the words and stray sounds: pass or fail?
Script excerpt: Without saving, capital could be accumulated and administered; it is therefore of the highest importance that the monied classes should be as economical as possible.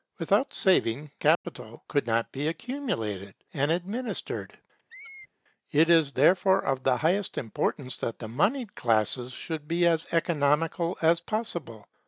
fail